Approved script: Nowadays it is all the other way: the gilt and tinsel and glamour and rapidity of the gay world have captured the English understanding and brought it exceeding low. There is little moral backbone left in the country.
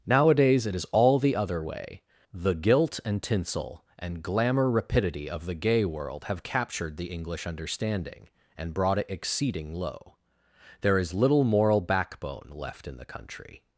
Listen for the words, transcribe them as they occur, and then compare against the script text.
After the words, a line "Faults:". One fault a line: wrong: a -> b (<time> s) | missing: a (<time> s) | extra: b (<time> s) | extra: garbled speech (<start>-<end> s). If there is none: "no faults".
Nowadays it is all the other way: the gilt and tinsel and glamour rapidity of the gay world have captured the English understanding and brought it exceeding low. There is little moral backbone left in the country.
Faults:
missing: and (4.7 s)